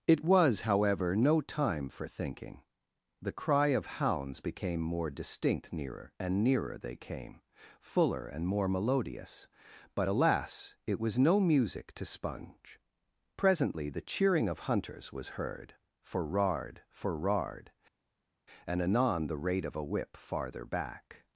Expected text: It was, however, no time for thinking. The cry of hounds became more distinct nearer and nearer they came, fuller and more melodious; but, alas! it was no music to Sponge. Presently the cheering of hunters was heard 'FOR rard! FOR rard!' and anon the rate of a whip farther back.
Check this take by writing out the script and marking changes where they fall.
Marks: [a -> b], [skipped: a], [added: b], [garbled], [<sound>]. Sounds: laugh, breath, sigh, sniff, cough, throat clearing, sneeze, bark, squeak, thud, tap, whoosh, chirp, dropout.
It was, however, no time for thinking. The cry of hounds became more distinct nearer and nearer they came, fuller and more melodious; but, alas! it was no music to Sponge. Presently the cheering of hunters was heard 'FOR rard! FOR rard!' and anon the rate of a whip farther back.